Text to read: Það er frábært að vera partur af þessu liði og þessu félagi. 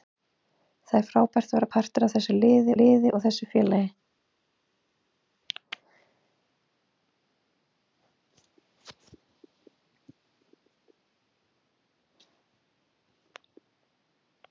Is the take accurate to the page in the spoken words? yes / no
no